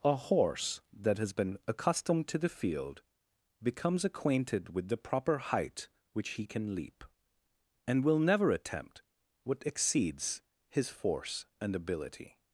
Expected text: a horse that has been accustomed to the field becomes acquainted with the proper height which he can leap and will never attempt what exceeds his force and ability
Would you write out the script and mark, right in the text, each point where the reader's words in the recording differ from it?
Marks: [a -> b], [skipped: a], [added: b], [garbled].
a horse that has been accustomed to the field becomes acquainted with the proper height which he can leap and will never attempt what exceeds his force and ability